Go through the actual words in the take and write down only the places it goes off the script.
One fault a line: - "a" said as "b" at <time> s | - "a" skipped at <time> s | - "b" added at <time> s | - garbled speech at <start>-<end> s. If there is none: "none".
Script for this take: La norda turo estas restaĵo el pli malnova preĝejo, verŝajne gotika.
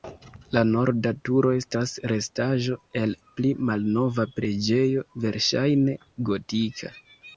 none